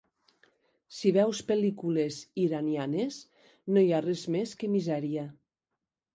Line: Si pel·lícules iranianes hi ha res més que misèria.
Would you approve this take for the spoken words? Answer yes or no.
no